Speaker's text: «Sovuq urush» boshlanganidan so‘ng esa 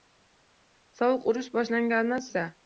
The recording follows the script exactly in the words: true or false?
false